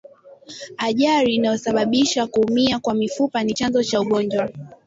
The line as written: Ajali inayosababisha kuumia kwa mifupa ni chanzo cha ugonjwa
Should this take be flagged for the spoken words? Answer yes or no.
no